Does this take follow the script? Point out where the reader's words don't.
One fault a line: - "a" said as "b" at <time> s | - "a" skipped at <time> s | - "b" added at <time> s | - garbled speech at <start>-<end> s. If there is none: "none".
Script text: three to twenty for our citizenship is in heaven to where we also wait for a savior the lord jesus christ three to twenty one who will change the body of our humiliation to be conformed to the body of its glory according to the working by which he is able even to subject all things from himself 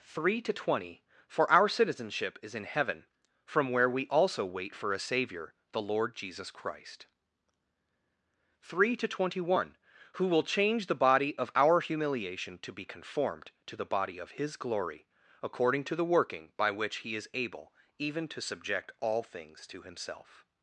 - "to" said as "from" at 3.5 s
- "its" said as "his" at 14.4 s
- "from" said as "to" at 19.7 s